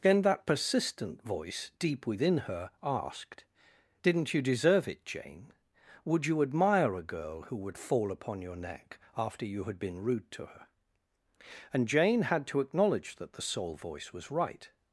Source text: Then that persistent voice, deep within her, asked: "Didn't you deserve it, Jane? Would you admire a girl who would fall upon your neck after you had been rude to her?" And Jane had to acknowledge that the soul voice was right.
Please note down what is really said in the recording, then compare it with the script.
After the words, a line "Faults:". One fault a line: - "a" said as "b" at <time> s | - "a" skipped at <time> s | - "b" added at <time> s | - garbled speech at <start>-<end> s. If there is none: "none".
Then that persistent voice, deep within her, asked: "Didn't you deserve it, Jane? Would you admire a girl who would fall upon your neck after you had been rude to her?" And Jane had to acknowledge that the soul voice was right.
Faults:
none